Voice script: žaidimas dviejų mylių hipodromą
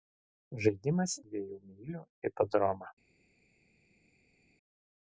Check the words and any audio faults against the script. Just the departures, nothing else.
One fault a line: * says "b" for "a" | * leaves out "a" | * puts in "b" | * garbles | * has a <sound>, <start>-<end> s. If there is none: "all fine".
all fine